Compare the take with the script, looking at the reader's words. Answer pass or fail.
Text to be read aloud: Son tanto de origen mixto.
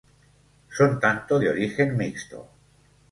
pass